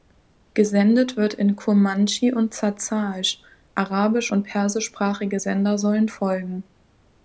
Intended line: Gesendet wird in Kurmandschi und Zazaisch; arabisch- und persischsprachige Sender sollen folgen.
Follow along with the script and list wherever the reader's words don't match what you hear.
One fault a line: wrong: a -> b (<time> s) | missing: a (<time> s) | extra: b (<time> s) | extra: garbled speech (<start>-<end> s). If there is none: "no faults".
no faults